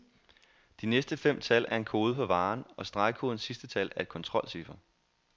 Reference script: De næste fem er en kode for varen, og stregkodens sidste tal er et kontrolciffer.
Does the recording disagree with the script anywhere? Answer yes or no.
yes